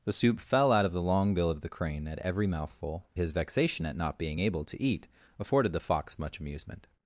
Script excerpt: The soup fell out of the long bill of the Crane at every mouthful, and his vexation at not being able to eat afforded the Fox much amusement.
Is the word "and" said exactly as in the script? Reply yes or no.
no